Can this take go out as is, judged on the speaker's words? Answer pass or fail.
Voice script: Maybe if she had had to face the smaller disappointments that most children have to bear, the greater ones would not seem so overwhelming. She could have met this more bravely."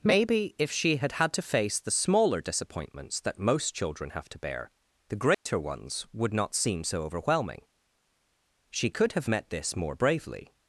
pass